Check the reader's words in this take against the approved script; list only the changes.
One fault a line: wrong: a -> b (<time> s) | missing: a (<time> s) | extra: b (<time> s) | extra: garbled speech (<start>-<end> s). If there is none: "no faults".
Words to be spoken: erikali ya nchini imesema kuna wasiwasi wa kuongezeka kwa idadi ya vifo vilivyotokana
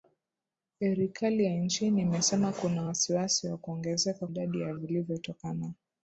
missing: kwa (4.3 s)
missing: vifo (4.7 s)